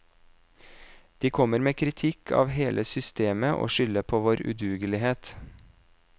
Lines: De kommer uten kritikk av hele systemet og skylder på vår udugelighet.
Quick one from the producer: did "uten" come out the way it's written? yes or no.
no